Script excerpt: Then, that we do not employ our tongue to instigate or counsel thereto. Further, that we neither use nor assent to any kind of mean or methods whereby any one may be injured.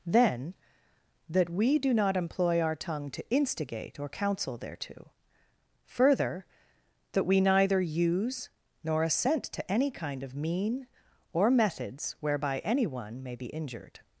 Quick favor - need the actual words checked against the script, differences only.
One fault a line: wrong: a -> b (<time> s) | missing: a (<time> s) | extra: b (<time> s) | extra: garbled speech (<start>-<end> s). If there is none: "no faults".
no faults